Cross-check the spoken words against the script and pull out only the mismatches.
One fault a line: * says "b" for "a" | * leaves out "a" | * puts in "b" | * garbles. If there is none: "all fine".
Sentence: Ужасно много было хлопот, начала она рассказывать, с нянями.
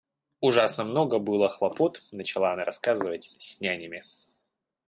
all fine